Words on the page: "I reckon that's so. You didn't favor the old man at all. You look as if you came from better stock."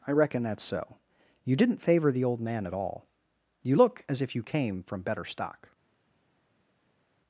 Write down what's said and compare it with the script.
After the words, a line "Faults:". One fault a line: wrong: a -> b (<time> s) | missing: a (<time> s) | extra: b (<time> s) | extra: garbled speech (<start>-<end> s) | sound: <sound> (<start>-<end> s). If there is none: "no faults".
"I reckon that's so. You didn't favor the old man at all. You look as if you came from better stock."
Faults:
no faults